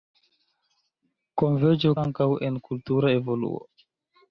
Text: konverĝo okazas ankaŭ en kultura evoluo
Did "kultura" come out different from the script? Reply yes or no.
no